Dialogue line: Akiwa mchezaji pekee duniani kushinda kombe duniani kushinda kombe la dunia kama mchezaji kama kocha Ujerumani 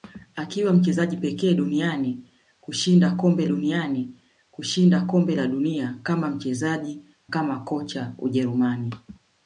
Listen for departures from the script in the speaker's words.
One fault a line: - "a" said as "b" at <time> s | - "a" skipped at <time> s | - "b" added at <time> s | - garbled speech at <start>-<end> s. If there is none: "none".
none